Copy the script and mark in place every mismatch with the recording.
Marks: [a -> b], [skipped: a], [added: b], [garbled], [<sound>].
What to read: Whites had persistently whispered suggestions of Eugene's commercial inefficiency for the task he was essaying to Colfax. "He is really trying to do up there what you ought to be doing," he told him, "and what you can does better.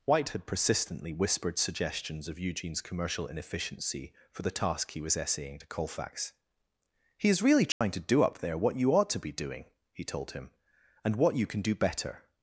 [Whites -> White] had persistently whispered suggestions of Eugene's commercial inefficiency for the task he was essaying to Colfax. "He is really trying [dropout] to do up there what you ought to be doing," he told him, "and what you can [does -> do] better.